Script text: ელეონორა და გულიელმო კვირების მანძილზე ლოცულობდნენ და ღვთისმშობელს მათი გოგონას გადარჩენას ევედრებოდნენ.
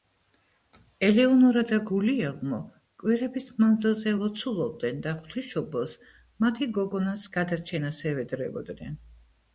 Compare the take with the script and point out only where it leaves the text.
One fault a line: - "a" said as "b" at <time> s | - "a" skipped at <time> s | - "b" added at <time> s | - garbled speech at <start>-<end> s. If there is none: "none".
none